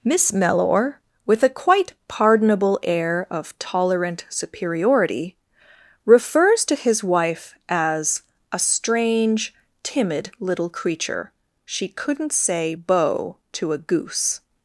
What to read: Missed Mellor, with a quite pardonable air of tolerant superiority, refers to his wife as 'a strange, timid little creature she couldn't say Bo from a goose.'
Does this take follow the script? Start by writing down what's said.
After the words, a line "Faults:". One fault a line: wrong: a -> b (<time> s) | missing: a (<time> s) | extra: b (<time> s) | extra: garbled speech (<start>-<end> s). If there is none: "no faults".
Miss Mellor, with a quite pardonable air of tolerant superiority, refers to his wife as 'a strange, timid little creature she couldn't say Bo to a goose.'
Faults:
wrong: Missed -> Miss (0.0 s)
wrong: from -> to (13.5 s)